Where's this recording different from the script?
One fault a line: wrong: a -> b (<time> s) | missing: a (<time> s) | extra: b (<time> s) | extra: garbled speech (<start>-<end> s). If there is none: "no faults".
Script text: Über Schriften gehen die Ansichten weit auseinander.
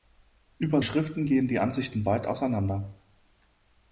no faults